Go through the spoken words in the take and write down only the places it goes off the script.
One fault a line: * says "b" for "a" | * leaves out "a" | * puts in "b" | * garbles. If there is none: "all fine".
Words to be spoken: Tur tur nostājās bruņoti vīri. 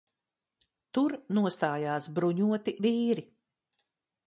* leaves out "tur"